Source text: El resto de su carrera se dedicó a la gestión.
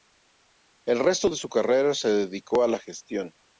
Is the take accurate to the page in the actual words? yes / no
yes